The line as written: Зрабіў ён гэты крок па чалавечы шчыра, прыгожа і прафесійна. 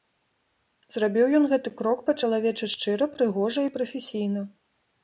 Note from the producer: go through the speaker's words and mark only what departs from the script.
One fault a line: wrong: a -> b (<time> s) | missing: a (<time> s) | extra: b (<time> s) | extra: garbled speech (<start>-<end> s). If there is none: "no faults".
no faults